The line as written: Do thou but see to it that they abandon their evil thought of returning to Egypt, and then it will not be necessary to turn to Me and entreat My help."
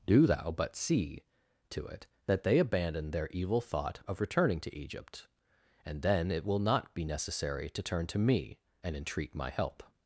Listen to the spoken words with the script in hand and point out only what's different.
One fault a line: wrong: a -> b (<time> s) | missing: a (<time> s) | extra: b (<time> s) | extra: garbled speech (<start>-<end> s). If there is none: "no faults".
no faults